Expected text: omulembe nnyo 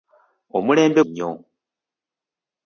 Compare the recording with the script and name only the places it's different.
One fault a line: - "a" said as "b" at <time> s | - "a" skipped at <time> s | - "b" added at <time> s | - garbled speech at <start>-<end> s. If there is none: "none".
none